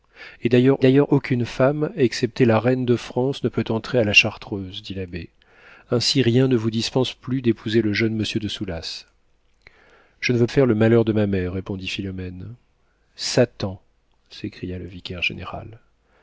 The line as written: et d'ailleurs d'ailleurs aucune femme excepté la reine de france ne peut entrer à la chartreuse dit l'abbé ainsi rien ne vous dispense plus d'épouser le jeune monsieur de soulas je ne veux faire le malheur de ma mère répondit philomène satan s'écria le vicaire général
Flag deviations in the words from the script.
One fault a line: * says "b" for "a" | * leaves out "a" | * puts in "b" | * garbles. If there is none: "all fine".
all fine